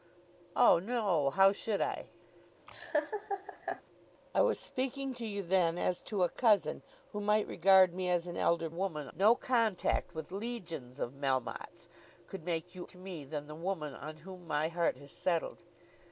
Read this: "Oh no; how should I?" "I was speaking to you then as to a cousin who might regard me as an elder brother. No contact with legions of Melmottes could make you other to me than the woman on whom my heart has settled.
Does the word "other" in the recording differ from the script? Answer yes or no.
yes